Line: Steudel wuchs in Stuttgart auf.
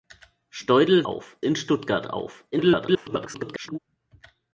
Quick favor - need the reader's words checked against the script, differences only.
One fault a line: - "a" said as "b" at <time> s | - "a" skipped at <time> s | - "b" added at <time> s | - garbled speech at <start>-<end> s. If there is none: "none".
- "wuchs" said as "auf" at 1.0 s
- garbled speech at 2.5-3.8 s